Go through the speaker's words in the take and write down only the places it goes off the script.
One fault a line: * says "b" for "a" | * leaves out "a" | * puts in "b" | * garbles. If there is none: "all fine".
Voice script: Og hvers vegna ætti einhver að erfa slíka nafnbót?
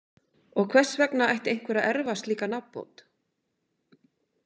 all fine